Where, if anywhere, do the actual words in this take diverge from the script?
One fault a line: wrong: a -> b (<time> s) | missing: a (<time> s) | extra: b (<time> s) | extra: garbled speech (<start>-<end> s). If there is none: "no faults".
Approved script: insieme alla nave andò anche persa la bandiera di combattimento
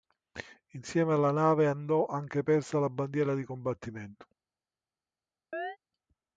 no faults